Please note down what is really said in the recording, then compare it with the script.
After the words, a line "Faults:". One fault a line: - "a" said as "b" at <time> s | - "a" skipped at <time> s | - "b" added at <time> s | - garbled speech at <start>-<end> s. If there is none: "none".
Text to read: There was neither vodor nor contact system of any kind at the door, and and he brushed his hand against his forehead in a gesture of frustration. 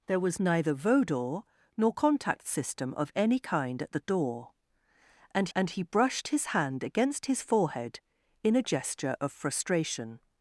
There was neither vodor nor contact system of any kind at the door, and and he brushed his hand against his forehead in a gesture of frustration.
Faults:
none